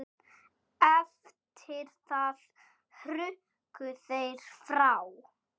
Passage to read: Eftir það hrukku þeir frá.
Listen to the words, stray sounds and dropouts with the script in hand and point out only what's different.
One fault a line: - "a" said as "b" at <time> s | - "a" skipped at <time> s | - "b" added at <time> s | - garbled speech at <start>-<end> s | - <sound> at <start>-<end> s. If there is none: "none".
none